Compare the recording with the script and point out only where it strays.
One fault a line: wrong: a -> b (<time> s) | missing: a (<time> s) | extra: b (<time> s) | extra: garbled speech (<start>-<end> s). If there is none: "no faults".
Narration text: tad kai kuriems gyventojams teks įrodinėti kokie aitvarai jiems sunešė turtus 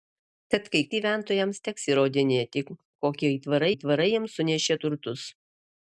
missing: kuriems (0.8 s)
extra: aitvarai (3.7 s)